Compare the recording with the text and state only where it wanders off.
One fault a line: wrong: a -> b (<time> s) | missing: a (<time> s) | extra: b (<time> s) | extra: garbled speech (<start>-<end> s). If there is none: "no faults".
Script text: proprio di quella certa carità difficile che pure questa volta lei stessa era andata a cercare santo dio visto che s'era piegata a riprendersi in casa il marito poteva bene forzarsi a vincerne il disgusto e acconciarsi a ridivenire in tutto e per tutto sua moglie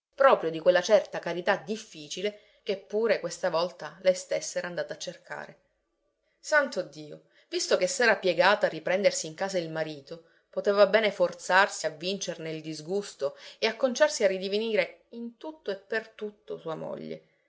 no faults